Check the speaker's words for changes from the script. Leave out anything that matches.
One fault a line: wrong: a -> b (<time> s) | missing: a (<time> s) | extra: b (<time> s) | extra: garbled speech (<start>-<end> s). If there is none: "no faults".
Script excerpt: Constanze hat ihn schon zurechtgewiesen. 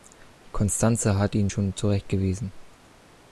no faults